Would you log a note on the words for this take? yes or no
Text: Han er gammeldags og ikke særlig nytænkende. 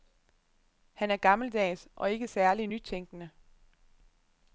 no